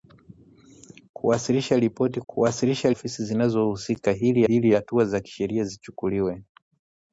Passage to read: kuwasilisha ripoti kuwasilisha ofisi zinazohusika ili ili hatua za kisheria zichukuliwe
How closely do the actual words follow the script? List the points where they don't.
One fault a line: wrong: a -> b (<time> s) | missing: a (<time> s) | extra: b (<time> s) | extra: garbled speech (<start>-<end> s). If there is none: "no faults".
no faults